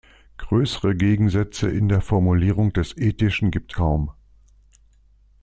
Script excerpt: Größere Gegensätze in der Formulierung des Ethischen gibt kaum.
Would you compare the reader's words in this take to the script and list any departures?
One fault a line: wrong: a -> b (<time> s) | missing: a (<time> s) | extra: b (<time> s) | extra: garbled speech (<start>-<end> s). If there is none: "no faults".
no faults